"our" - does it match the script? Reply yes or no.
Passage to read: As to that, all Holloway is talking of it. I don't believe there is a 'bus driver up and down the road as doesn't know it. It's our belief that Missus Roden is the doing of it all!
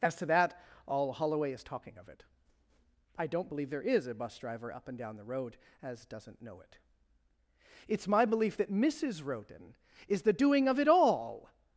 no